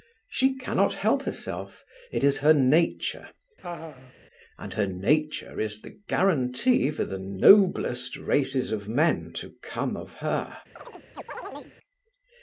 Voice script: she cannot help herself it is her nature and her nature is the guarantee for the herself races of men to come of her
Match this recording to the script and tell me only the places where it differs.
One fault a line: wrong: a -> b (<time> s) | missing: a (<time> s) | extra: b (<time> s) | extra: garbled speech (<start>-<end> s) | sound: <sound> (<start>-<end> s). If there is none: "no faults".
sound: laugh (3.6-4.1 s)
wrong: herself -> noblest (7.2 s)
sound: chirp (10.8-11.8 s)